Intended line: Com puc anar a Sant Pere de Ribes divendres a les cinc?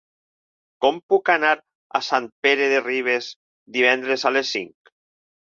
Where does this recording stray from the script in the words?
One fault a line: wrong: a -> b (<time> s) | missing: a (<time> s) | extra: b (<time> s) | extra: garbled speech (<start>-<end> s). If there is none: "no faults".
no faults